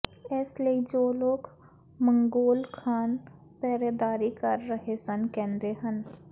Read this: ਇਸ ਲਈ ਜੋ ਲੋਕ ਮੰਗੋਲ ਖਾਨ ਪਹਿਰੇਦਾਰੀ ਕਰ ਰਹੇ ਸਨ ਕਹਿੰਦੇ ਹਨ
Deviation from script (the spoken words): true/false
false